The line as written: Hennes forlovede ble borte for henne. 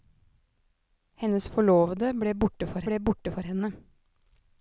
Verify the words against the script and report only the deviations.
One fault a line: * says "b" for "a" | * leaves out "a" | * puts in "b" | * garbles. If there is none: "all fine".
* puts in "ble borte for"